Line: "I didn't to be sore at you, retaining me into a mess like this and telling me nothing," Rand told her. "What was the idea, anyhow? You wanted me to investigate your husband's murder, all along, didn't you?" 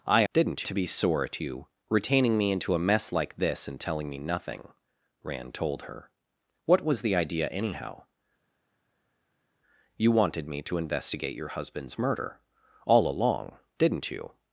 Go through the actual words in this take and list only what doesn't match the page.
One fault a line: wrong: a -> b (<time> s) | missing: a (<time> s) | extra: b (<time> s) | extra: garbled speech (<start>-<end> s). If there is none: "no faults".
no faults